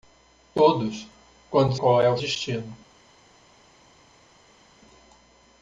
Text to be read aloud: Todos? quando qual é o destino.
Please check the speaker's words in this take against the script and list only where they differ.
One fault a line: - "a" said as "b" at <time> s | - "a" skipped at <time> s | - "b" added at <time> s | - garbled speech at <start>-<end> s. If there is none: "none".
none